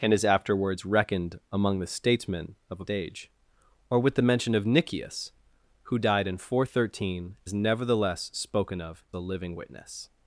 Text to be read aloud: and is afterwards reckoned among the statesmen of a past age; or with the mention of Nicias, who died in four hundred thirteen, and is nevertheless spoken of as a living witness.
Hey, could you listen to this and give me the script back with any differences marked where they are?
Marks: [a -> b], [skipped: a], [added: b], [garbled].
and is afterwards reckoned among the statesmen of a [skipped: past] age; or with the mention of Nicias, who died in four hundred thirteen, [skipped: and] is nevertheless spoken of [skipped: as] a living witness.